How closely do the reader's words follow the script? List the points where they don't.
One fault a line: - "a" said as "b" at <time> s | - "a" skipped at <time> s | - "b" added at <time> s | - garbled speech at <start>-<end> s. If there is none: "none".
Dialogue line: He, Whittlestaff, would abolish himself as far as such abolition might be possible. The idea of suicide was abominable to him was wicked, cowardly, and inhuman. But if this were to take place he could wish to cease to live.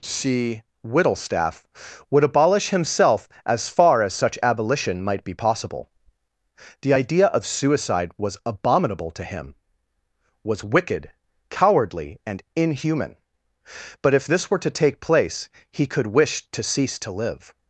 - "He" said as "C" at 0.0 s